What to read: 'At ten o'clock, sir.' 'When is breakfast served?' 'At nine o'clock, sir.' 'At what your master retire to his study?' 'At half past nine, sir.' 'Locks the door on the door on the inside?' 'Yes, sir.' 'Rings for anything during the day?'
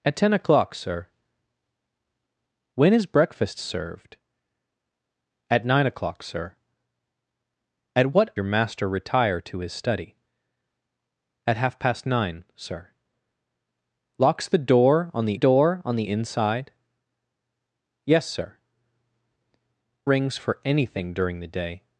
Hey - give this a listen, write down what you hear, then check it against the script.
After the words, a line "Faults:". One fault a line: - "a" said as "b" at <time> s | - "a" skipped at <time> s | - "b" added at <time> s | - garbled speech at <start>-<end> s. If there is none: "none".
'At ten o'clock, sir.' 'When is breakfast served?' 'At nine o'clock, sir.' 'At what your master retire to his study?' 'At half past nine, sir.' 'Locks the door on the door on the inside?' 'Yes, sir.' 'Rings for anything during the day?'
Faults:
none